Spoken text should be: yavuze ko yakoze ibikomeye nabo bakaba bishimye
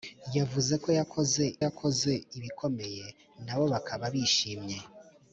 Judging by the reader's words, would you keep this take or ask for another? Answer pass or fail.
fail